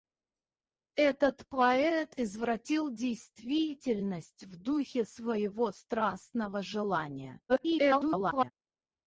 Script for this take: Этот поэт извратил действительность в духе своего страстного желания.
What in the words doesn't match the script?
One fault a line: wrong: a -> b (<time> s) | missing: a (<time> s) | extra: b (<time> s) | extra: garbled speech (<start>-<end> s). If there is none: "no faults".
extra: garbled speech (7.5-8.5 s)